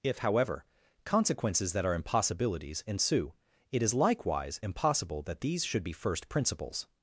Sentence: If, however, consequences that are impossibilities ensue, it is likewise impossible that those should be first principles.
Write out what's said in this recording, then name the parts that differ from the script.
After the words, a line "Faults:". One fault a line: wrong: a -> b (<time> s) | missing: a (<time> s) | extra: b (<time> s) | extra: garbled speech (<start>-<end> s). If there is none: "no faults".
If, however, consequences that are impossibilities ensue, it is likewise impossible that these should be first principles.
Faults:
wrong: those -> these (5.4 s)